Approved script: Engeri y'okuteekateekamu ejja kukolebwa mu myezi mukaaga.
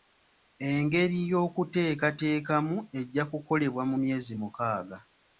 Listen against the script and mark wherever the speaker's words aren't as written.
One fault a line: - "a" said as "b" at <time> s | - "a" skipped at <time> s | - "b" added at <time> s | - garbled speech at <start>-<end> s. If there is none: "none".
none